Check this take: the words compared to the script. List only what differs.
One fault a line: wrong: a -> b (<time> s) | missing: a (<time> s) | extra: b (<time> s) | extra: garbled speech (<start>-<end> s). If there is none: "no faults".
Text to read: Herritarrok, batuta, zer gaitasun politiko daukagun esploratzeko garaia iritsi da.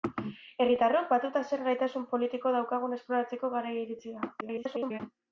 extra: garbled speech (4.4-5.0 s)